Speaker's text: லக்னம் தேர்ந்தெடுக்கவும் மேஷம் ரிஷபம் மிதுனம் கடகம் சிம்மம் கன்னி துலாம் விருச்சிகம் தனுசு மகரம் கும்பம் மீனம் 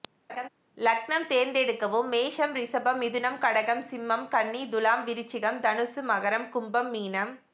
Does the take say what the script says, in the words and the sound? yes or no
no